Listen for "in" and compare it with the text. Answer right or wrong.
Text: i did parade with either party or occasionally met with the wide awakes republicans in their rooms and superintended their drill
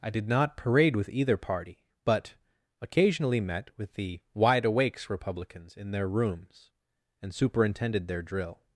right